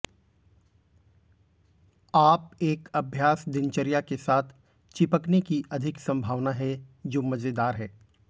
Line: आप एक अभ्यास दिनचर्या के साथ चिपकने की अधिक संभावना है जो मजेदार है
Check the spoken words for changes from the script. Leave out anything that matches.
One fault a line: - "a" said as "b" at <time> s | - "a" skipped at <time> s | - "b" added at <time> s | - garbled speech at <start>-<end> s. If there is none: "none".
none